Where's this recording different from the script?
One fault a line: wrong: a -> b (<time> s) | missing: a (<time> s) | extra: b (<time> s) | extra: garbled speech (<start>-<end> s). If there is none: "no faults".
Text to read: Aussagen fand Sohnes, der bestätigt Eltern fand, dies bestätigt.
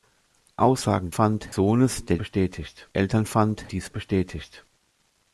no faults